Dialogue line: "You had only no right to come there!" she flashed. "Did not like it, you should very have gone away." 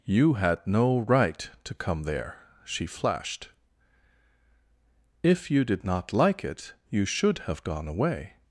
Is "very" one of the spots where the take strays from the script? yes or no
yes